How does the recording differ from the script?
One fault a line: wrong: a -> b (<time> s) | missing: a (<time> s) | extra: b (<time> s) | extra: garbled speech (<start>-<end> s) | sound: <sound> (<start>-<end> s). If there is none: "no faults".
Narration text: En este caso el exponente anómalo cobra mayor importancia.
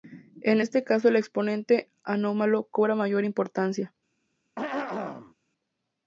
sound: throat clearing (4.6-5.3 s)